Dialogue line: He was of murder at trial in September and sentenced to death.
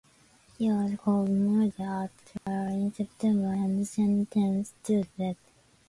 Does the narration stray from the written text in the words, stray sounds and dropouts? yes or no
yes